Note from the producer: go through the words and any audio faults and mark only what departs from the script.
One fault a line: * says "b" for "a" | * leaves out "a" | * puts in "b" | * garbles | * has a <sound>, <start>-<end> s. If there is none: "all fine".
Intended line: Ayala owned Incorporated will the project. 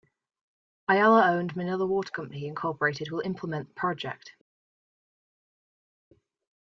* puts in "Manila Water Company"
* puts in "implement"